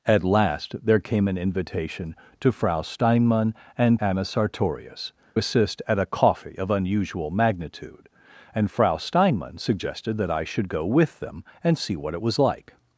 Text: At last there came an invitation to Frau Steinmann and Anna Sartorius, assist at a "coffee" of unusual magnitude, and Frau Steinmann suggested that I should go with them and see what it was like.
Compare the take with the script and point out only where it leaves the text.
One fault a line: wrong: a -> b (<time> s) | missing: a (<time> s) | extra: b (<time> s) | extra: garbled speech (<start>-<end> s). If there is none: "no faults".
no faults